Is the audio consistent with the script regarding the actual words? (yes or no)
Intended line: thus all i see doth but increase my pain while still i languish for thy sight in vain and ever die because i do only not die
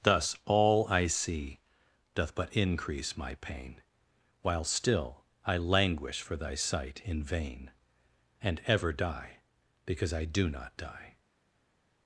no